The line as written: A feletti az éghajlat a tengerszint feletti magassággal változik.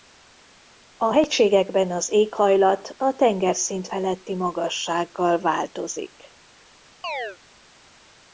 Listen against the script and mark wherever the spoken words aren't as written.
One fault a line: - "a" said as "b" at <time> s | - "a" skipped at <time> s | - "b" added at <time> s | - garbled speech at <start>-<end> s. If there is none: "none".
- "feletti" said as "hegységekben" at 1.1 s